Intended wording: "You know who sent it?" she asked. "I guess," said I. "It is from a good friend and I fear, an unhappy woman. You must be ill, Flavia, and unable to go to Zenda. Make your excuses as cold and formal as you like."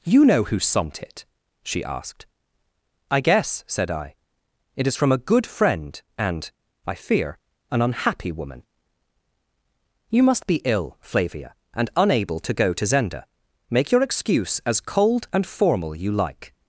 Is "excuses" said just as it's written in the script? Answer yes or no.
no